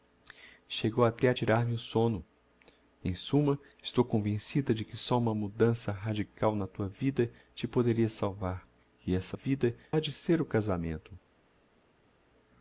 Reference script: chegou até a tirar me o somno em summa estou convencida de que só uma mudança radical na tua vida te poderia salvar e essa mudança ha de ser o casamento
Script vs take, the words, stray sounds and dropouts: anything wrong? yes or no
yes